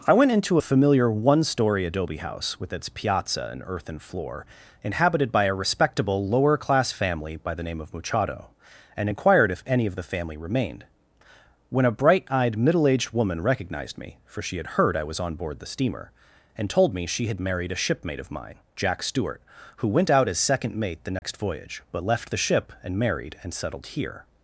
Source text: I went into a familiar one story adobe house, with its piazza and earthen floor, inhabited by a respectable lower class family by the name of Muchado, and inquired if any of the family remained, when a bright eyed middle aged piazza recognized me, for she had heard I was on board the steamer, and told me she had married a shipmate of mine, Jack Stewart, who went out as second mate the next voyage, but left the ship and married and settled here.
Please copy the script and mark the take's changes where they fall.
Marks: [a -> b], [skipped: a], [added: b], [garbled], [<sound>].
I went into a familiar one story adobe house, with its piazza and earthen floor, inhabited by a respectable lower class family by the name of Muchado, and inquired if any of the family remained, when a bright eyed middle aged [piazza -> woman] recognized me, for she had heard I was on board the steamer, and told me she had married a shipmate of mine, Jack Stewart, who went out as second mate the next [dropout] voyage, but left the ship and married and settled here.